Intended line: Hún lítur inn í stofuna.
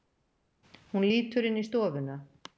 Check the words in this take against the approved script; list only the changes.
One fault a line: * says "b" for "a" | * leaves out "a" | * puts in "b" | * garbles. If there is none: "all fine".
all fine